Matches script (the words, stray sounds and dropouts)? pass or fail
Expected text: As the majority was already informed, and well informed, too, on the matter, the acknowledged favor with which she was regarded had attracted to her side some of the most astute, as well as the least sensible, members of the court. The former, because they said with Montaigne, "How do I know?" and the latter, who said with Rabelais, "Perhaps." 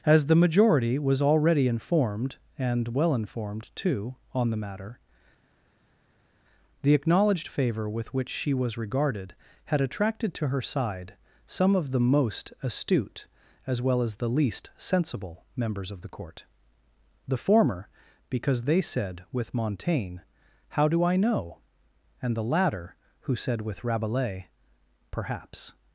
pass